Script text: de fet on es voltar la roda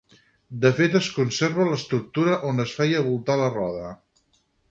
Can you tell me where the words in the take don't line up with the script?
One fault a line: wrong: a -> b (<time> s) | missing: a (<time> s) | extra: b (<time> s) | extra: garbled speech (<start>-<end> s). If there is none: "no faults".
extra: es conserva l'estructura (1.0 s)
extra: feia (2.8 s)